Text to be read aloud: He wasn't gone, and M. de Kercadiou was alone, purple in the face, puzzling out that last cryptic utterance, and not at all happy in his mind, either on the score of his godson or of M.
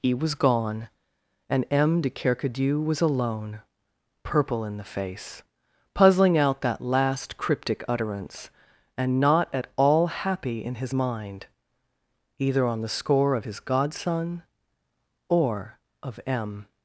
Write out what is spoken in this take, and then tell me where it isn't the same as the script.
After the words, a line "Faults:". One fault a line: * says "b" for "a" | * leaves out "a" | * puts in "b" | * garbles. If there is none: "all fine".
He was gone, and M. de Kercadiou was alone, purple in the face, puzzling out that last cryptic utterance, and not at all happy in his mind, either on the score of his godson or of M.
Faults:
* says "was" for "wasn't"